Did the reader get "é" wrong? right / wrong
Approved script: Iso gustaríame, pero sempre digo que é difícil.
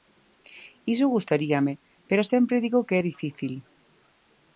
right